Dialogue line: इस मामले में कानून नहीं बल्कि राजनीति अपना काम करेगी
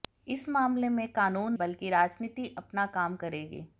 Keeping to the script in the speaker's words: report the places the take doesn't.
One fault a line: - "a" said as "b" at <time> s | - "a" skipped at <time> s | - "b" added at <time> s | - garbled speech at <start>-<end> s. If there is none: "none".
- "नहीं" skipped at 1.5 s